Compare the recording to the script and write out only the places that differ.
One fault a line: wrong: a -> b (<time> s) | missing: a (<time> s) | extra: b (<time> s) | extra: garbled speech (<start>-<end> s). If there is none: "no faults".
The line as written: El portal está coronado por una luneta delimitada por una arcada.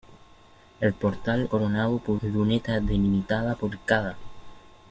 missing: está (1.5 s)
missing: una (2.2 s)
missing: una (3.7 s)